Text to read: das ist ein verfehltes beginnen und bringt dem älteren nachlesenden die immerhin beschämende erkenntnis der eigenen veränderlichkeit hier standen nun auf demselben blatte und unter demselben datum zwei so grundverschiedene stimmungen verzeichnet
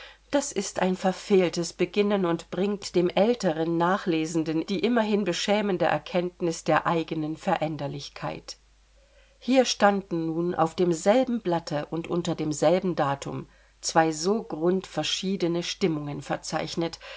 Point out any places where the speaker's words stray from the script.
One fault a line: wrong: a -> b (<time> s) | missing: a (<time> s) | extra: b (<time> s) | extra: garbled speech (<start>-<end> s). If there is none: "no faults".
no faults